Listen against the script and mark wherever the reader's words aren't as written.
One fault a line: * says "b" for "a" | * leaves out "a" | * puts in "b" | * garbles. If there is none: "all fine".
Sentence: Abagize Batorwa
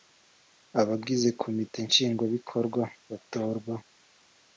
* puts in "Komite Nshingwabikorwa"